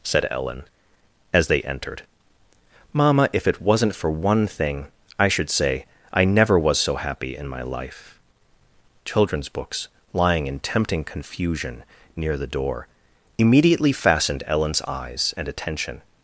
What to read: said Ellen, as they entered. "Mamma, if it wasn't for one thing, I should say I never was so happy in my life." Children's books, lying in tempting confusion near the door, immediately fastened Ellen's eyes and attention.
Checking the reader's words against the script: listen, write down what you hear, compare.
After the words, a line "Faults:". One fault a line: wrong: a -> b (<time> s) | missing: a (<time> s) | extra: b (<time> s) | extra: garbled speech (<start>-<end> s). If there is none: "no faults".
said Ellen, as they entered. "Mamma, if it wasn't for one thing, I should say I never was so happy in my life." Children's books, lying in tempting confusion near the door, immediately fastened Ellen's eyes and attention.
Faults:
no faults